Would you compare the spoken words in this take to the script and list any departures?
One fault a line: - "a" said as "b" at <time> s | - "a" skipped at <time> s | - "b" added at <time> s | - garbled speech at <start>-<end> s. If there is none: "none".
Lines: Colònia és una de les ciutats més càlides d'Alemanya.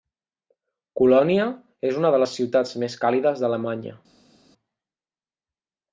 none